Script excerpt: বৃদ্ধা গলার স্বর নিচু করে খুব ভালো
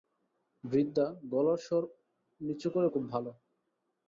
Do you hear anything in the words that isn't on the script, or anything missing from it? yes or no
no